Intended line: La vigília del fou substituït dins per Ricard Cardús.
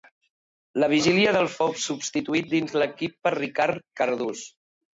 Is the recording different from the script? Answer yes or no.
yes